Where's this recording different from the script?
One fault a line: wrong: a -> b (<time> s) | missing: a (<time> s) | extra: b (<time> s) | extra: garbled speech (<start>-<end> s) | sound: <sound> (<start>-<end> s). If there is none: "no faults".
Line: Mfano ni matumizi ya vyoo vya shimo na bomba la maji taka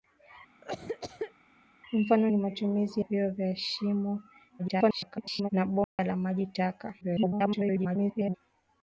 sound: cough (0.6-1.3 s)
missing: ya (3.0 s)
extra: garbled speech (4.6-5.5 s)
sound: dropout (5.8-6.0 s)
extra: garbled speech (7.0-8.4 s)